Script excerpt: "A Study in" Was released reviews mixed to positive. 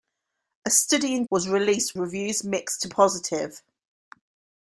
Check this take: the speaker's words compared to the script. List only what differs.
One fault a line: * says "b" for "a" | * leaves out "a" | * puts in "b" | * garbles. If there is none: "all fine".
all fine